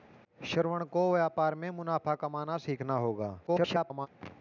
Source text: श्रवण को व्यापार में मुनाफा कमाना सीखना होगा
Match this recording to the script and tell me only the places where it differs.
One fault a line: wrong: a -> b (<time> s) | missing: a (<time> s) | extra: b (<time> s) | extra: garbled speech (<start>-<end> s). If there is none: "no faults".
extra: garbled speech (3.5-4.1 s)